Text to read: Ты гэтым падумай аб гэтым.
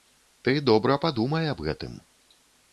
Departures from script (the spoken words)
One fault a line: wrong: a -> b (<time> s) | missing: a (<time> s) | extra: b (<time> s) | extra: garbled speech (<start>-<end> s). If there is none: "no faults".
wrong: гэтым -> добра (0.7 s)